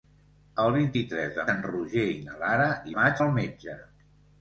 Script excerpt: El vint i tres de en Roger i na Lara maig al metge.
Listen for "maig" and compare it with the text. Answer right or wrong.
right